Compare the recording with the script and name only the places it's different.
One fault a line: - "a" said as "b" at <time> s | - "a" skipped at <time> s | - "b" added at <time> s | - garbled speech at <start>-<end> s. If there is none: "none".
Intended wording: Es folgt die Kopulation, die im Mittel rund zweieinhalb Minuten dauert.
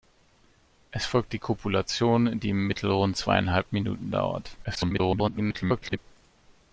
- garbled speech at 4.6-6.0 s